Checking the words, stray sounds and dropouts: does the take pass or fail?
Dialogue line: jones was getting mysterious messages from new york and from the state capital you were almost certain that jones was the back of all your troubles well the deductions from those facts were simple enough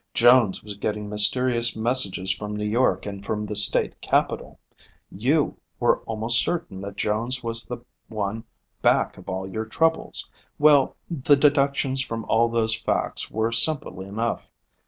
fail